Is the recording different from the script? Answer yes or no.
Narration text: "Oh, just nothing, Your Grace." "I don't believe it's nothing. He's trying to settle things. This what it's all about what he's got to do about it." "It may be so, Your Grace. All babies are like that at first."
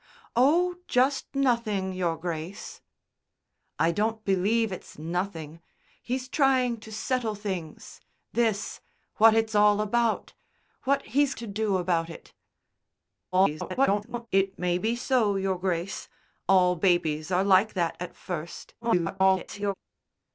yes